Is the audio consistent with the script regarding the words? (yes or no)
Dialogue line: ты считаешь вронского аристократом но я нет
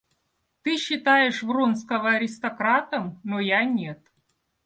yes